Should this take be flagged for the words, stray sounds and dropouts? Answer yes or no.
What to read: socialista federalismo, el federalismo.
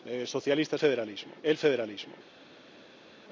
no